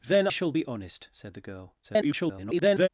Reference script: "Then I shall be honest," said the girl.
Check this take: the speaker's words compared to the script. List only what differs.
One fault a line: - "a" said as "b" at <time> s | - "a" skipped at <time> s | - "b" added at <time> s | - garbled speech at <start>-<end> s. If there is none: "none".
- "I" skipped at 0.3 s
- garbled speech at 1.8-2.9 s